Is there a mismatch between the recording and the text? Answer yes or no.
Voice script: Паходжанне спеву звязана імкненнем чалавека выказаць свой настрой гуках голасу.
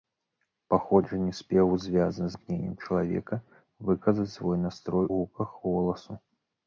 no